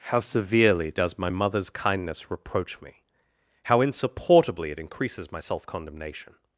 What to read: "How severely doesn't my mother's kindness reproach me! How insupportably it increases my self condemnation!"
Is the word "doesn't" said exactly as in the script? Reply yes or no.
no